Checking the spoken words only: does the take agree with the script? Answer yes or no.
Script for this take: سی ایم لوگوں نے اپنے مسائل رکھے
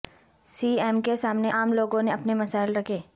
no